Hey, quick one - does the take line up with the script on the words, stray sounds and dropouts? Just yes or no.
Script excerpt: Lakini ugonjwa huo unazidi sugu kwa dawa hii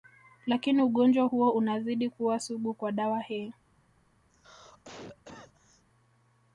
no